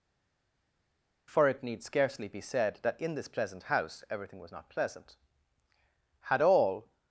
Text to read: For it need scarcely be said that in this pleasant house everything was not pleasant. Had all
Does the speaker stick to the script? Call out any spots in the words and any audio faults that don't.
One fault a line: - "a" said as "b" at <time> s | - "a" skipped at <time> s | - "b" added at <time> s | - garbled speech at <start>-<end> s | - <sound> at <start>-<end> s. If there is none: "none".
none